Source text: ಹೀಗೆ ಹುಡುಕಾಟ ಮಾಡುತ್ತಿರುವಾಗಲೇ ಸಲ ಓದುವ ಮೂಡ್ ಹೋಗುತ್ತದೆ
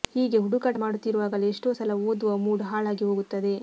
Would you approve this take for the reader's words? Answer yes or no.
no